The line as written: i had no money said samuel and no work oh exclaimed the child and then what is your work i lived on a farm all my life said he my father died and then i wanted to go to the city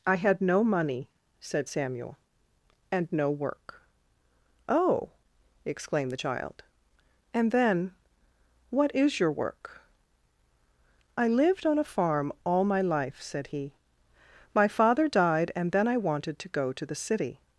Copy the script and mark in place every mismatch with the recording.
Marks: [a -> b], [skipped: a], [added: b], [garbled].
i had no money said samuel and no work oh exclaimed the child and then what is your work i lived on a farm all my life said he my father died and then i wanted to go to the city